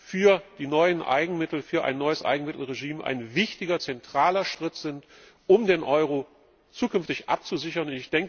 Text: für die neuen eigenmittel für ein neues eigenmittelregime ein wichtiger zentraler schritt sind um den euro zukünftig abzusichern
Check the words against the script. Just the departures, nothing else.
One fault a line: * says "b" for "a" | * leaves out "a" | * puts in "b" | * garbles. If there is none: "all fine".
all fine